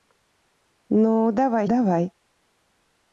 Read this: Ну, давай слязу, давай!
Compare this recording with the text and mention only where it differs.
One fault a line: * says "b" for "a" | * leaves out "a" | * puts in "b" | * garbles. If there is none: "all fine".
* leaves out "слязу"